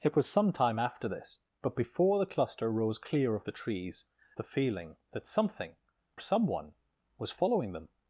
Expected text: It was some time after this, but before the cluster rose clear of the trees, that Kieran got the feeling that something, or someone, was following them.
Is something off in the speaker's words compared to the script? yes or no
yes